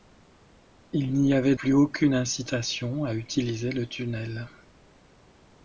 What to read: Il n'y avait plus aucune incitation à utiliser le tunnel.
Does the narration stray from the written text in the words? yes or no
no